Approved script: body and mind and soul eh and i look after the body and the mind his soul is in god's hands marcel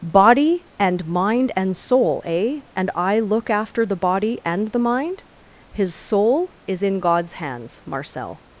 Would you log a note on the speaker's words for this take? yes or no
no